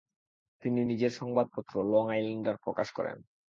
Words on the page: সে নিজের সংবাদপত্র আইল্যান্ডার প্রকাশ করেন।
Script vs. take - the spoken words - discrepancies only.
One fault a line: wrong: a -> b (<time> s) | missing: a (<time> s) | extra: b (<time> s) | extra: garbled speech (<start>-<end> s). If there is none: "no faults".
wrong: সে -> তিনি (0.6 s)
extra: লং (1.9 s)